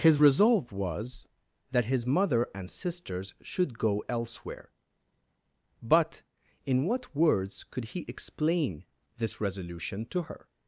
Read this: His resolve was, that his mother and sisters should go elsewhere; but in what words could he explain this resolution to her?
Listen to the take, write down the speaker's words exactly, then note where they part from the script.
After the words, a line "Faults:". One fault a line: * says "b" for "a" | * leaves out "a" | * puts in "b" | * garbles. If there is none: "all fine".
His resolve was, that his mother and sisters should go elsewhere; but in what words could he explain this resolution to her?
Faults:
all fine